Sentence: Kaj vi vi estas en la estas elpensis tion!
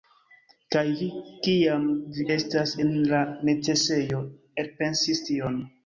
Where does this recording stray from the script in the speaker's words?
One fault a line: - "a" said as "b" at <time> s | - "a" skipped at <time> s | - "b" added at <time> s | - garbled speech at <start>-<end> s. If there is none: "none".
- "kiam" added at 1.5 s
- "estas" said as "necesejo" at 3.5 s